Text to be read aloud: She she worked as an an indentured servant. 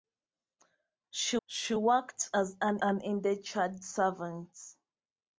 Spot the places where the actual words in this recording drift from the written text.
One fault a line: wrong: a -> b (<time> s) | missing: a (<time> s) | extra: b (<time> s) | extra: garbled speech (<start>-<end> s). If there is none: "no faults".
no faults